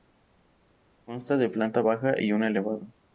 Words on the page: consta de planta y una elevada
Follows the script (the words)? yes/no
no